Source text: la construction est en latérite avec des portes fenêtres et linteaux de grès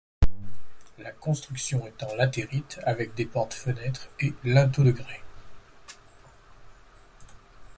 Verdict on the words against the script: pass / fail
pass